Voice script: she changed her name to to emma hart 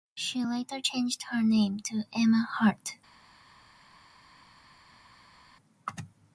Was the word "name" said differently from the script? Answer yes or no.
no